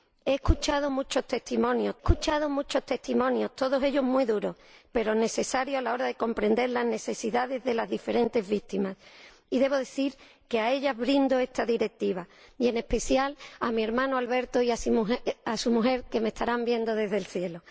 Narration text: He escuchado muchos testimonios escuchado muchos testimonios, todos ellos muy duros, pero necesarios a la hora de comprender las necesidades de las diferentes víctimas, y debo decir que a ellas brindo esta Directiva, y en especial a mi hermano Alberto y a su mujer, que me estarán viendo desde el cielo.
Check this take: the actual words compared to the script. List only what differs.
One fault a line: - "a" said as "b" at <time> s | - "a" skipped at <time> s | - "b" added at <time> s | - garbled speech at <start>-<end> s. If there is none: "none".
none